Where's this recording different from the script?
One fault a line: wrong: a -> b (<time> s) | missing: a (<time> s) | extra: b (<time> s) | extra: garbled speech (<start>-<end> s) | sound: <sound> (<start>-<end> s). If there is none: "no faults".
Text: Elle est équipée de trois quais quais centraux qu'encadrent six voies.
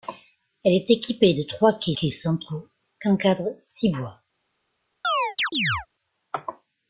sound: chirp (5.0-5.9 s)